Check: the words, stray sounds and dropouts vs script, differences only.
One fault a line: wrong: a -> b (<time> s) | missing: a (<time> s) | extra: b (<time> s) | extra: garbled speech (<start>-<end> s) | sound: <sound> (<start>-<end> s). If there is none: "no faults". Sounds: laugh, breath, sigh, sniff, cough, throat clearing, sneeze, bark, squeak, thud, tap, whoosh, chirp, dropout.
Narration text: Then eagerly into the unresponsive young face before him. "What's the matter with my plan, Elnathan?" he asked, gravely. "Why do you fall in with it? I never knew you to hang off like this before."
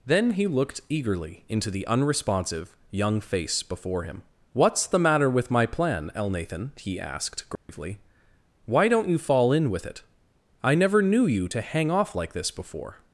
extra: he looked (0.3 s)
sound: dropout (7.6-7.7 s)
wrong: do -> don't (8.9 s)